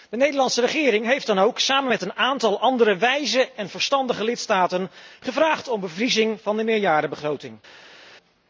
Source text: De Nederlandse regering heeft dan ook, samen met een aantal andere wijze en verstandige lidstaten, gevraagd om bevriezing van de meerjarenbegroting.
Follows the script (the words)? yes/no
yes